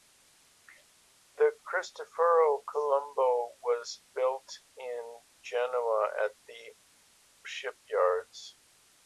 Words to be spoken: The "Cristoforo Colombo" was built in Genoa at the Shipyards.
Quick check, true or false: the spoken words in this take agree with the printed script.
true